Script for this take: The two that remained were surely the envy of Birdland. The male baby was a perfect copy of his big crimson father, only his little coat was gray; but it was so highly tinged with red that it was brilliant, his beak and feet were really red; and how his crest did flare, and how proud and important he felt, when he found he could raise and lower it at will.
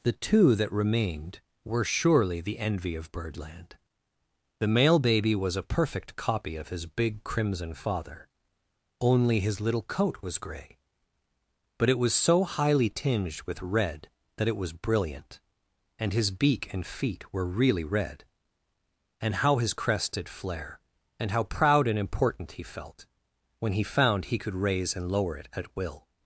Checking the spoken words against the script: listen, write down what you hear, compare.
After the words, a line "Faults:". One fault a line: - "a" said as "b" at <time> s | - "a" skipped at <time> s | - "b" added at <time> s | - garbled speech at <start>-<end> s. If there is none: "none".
The two that remained were surely the envy of Birdland. The male baby was a perfect copy of his big crimson father, only his little coat was gray; but it was so highly tinged with red that it was brilliant, and his beak and feet were really red; and how his crest did flare, and how proud and important he felt, when he found he could raise and lower it at will.
Faults:
- "and" added at 16.0 s